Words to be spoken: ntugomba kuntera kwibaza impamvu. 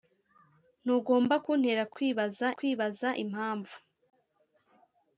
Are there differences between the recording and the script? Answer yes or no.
yes